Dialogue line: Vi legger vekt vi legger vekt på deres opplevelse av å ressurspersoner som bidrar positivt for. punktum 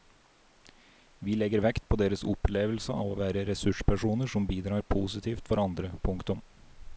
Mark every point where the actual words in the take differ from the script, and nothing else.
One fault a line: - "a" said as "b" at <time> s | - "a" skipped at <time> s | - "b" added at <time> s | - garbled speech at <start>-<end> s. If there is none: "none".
- "vi legger vekt" skipped at 1.8 s
- "være" added at 3.2 s
- "andre" added at 5.6 s